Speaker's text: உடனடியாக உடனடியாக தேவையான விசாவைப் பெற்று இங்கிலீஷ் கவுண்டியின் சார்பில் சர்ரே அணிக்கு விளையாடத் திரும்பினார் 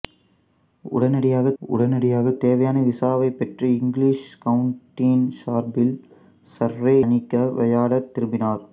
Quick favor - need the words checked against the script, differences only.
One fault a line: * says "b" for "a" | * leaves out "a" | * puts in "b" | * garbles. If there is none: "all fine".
all fine